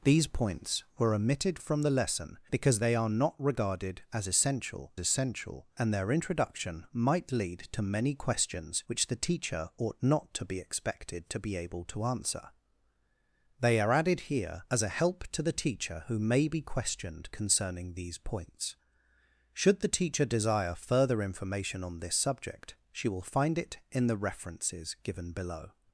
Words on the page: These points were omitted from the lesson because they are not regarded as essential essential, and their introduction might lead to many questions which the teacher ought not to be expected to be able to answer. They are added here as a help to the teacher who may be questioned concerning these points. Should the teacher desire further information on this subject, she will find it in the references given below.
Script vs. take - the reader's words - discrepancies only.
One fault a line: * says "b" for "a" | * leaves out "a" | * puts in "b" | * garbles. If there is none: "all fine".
all fine